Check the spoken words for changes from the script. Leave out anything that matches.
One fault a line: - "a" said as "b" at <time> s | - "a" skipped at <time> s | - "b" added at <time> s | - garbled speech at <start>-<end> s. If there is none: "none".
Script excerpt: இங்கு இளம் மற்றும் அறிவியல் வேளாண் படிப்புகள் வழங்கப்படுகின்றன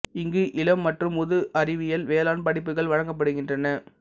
- "முது" added at 1.2 s